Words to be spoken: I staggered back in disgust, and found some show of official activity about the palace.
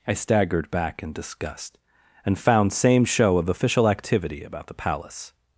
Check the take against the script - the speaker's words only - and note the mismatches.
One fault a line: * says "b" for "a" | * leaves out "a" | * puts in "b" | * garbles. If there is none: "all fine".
* says "same" for "some"